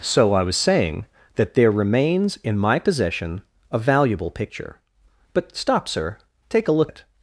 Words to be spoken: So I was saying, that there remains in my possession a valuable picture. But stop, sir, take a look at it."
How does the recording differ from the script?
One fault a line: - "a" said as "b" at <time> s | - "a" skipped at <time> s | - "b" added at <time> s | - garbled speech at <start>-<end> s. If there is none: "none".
- "at" skipped at 6.9 s